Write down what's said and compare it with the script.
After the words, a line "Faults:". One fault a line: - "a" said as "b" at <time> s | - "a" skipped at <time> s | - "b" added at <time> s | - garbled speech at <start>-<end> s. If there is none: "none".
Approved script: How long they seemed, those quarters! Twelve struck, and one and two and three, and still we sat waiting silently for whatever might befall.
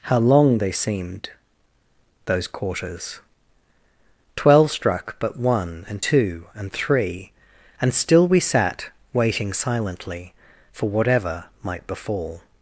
How long they seemed, those quarters! Twelve struck, but one and two and three, and still we sat waiting silently for whatever might befall.
Faults:
- "and" said as "but" at 5.2 s